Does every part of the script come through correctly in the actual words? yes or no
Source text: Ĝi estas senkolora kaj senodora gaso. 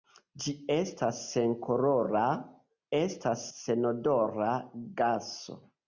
no